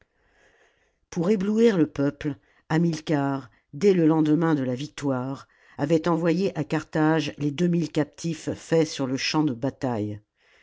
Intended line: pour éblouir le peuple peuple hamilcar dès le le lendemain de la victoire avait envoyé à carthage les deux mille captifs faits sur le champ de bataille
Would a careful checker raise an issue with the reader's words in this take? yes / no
yes